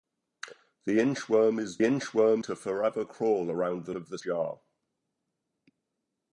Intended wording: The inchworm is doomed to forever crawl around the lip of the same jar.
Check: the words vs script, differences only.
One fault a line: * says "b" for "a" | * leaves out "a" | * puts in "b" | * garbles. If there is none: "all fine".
* says "inchworm" for "doomed"
* leaves out "lip"
* leaves out "same"